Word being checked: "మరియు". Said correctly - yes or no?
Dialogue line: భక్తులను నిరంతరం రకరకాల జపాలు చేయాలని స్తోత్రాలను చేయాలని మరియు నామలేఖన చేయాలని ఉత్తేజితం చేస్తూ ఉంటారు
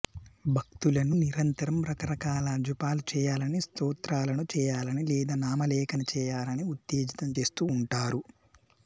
no